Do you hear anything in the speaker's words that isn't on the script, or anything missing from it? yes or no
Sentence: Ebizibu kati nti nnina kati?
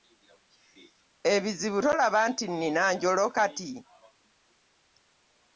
yes